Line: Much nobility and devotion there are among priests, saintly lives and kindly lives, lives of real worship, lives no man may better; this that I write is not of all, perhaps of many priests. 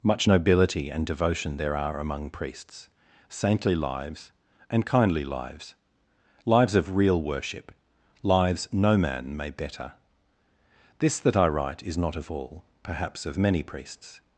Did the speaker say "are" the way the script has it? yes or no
yes